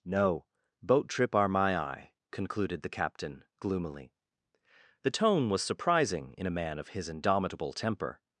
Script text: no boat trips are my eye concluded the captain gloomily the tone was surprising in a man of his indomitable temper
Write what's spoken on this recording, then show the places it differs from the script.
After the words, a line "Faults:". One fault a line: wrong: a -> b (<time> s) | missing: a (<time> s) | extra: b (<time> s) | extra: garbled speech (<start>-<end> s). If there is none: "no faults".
no boat trip are my eye concluded the captain gloomily the tone was surprising in a man of his indomitable temper
Faults:
wrong: trips -> trip (1.1 s)